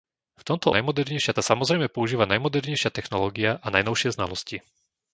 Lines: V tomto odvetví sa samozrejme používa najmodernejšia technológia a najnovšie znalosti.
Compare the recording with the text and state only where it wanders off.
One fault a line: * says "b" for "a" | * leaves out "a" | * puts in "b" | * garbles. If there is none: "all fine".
* says "najmodernejšia" for "odvetví"